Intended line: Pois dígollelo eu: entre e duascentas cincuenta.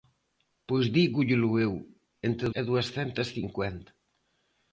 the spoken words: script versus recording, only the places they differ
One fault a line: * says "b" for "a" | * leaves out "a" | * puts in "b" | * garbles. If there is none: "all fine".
all fine